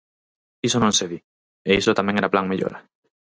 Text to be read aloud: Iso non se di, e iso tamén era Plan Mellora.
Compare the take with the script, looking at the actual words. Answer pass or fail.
pass